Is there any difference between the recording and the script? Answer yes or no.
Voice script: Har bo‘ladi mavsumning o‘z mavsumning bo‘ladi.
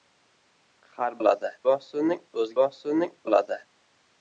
no